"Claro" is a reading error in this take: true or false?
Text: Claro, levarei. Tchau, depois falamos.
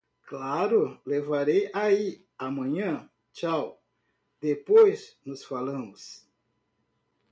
false